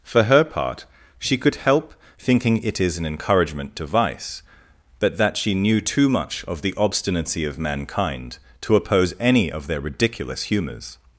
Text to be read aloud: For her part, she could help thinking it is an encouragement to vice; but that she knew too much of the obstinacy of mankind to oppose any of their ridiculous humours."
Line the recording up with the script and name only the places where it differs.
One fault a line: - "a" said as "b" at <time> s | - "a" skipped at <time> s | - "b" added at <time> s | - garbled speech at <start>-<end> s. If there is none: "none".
none